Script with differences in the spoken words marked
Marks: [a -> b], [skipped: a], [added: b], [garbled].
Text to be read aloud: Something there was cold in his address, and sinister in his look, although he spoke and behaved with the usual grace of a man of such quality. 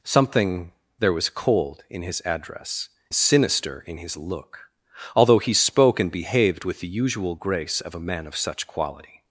Something there was cold in his address, [skipped: and] sinister in his look, although he spoke and behaved with the usual grace of a man of such quality.